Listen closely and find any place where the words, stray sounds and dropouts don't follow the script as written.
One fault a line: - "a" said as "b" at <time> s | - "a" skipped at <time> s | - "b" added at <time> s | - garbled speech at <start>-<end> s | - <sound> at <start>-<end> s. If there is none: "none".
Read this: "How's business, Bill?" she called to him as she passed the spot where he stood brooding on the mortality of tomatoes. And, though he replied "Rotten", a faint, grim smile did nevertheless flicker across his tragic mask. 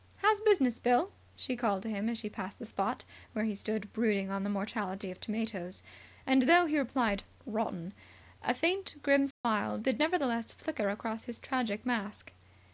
- dropout at 9.3-9.4 s